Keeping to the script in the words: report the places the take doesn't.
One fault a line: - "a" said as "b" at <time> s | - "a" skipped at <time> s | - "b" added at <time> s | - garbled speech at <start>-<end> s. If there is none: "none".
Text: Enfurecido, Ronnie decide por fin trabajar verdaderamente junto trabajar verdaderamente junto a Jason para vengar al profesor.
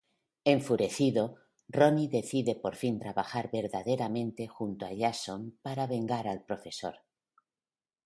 - "trabajar verdaderamente junto" skipped at 4.9 s